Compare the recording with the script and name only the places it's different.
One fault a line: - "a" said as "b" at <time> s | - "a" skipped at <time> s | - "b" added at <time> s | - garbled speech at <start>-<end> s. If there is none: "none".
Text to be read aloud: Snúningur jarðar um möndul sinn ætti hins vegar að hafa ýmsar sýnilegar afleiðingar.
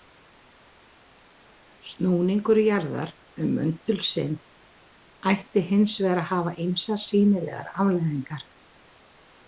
none